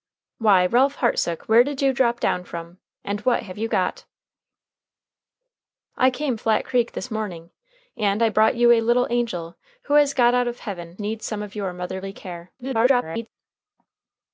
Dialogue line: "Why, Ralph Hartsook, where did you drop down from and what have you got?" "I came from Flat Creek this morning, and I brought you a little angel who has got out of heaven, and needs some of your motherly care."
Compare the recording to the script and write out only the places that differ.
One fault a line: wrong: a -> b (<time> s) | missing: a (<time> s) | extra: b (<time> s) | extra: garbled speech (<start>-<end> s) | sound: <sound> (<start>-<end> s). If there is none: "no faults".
missing: from (6.4 s)
missing: and (11.0 s)
extra: garbled speech (12.6-13.3 s)